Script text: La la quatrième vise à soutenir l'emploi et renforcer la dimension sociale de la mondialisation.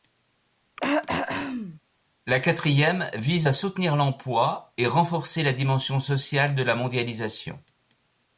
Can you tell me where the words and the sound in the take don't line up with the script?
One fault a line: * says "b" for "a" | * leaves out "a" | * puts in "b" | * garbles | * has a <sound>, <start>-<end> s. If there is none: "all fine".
* has a throat clearing, 0.8-1.8 s
* leaves out "la"